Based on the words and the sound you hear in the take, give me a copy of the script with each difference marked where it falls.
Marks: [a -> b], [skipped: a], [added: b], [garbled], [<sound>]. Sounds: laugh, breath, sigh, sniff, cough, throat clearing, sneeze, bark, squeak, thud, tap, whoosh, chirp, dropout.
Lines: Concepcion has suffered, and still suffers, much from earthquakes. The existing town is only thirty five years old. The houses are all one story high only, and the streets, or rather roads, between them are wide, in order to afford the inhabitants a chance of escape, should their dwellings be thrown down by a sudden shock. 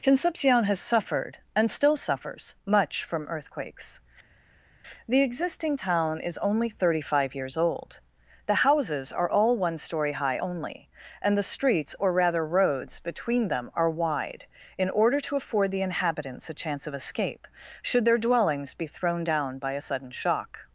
Concepcion has suffered, and still suffers, much from earthquakes. The existing town is only thirty five years old. The houses are all one story high only, and the streets, or rather roads, between them are wide, in order to afford the inhabitants a chance of escape, should their dwellings be thrown down by a sudden shock.